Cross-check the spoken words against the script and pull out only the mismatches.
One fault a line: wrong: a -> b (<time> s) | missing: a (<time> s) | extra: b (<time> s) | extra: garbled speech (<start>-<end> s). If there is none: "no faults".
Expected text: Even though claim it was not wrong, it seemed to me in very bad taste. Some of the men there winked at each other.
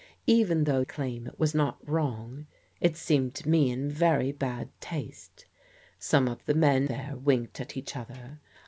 no faults